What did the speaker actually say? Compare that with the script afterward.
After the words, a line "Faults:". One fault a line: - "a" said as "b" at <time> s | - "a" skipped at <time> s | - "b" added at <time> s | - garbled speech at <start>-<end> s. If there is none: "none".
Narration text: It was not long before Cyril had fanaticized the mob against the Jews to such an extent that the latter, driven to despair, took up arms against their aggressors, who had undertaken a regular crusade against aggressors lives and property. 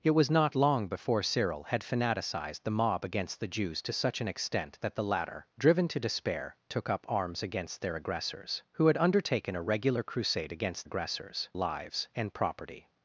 It was not long before Cyril had fanaticized the mob against the Jews to such an extent that the latter, driven to despair, took up arms against their aggressors, who had undertaken a regular crusade against aggressors lives and property.
Faults:
none